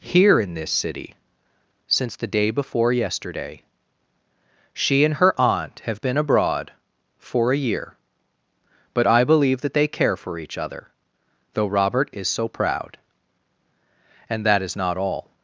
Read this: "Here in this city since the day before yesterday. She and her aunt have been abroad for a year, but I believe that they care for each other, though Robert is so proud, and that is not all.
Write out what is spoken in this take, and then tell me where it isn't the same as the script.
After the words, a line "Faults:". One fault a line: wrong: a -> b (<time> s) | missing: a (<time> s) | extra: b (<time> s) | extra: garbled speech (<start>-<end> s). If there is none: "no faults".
"Here in this city since the day before yesterday. She and her aunt have been abroad for a year, but I believe that they care for each other, though Robert is so proud, and that is not all.
Faults:
no faults